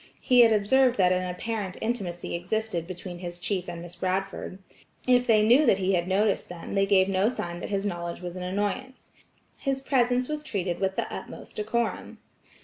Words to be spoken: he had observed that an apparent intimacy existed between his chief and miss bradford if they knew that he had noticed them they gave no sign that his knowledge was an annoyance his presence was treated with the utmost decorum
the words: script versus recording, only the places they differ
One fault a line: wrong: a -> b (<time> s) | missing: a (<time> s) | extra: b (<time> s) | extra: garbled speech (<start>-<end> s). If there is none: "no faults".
no faults